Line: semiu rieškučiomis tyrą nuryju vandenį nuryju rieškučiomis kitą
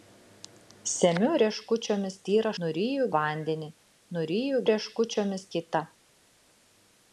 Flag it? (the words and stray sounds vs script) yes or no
no